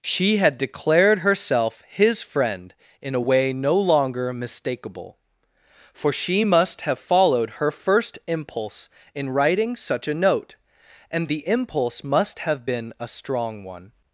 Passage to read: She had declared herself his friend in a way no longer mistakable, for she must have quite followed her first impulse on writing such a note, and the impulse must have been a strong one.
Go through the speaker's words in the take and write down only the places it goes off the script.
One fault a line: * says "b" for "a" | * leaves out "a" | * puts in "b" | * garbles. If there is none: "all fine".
* leaves out "quite"
* says "in" for "on"